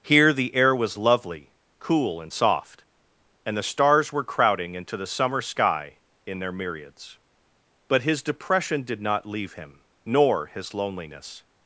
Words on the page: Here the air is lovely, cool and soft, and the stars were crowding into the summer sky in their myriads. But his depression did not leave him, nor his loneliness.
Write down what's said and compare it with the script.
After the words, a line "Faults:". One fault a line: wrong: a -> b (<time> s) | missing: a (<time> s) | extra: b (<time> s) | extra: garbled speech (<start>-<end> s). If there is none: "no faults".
Here the air was lovely, cool and soft, and the stars were crowding into the summer sky in their myriads. But his depression did not leave him, nor his loneliness.
Faults:
wrong: is -> was (0.8 s)